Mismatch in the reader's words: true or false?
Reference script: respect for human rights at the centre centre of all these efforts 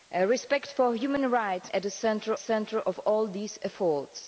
false